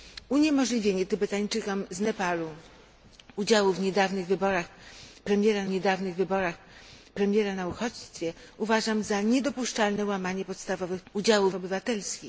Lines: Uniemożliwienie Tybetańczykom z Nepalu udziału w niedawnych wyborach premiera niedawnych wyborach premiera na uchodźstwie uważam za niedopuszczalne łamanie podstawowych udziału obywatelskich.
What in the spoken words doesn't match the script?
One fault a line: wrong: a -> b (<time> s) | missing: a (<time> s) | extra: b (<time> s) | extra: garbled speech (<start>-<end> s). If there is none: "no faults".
no faults